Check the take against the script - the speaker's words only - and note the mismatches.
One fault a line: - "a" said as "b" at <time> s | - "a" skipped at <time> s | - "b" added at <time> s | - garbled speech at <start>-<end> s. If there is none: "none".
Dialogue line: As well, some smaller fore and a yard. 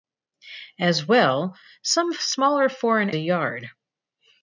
none